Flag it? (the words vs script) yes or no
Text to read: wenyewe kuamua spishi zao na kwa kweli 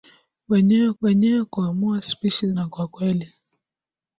yes